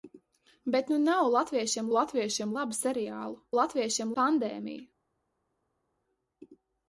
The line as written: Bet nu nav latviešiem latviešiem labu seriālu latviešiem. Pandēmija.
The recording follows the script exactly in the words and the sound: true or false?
true